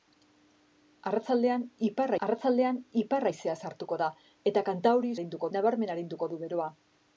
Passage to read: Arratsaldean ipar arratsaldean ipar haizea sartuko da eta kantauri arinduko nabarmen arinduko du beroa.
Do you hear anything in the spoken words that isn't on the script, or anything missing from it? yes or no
no